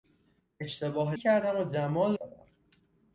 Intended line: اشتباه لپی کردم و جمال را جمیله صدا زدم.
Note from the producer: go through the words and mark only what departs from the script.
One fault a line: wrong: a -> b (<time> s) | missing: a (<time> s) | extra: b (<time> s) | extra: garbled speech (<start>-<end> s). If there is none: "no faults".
missing: لپی (1.1 s)
missing: را جمیله صدا (2.2 s)